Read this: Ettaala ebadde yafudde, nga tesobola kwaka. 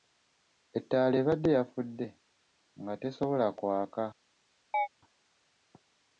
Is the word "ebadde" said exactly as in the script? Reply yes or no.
yes